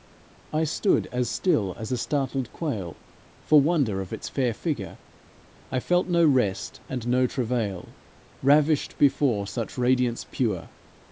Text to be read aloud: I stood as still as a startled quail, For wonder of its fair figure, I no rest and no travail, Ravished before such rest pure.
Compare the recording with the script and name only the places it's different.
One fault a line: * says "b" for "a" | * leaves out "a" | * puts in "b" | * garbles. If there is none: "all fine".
* puts in "felt"
* says "radiance" for "rest"